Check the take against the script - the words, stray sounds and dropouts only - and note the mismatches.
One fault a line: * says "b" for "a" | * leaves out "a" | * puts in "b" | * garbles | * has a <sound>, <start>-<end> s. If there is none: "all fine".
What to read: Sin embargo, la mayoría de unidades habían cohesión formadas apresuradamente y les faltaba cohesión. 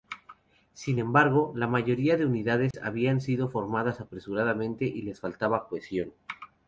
* has a dropout, 2.7-2.7 s
* says "sido" for "cohesión"